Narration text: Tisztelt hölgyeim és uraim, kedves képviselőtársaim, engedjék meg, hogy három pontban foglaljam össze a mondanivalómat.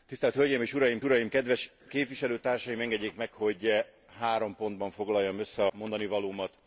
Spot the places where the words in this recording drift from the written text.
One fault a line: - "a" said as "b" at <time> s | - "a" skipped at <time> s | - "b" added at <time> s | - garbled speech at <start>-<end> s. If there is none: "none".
- "uraim" added at 1.0 s
- "a" skipped at 5.6 s